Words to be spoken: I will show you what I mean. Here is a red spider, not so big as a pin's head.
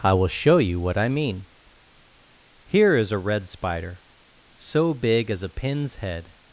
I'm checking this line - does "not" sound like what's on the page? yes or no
no